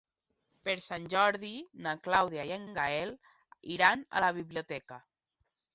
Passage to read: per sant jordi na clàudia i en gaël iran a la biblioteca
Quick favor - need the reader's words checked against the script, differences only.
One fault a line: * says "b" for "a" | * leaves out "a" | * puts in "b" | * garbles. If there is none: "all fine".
* puts in "en"